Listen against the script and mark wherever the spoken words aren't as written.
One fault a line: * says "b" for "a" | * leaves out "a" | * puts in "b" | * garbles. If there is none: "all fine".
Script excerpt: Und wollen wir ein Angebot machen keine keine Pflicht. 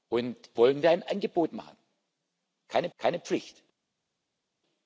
all fine